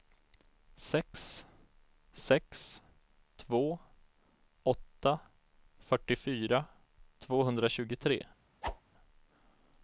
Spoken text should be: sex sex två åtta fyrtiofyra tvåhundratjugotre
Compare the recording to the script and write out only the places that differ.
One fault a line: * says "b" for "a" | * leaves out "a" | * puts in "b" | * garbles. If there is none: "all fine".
all fine